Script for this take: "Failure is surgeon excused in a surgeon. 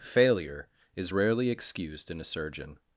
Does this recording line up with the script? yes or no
no